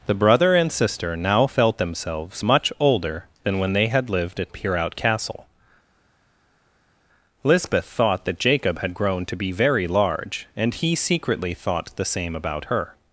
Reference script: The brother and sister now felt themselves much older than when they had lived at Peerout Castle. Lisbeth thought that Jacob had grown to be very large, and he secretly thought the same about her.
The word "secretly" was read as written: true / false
true